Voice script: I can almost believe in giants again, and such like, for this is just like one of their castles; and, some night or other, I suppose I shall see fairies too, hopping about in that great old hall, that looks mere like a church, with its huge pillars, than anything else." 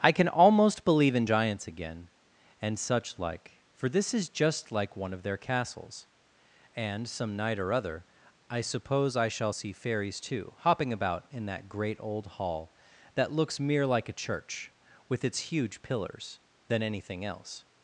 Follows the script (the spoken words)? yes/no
yes